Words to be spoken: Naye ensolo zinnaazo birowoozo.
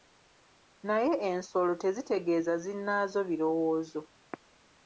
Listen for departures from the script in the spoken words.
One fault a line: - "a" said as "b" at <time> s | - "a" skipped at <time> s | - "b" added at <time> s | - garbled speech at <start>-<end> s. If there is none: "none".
- "tezitegeeza" added at 1.8 s